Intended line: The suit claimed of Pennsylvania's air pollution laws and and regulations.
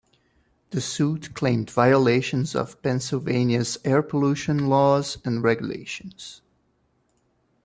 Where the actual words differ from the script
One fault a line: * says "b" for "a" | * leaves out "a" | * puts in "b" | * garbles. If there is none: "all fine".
* puts in "violations"
* leaves out "and"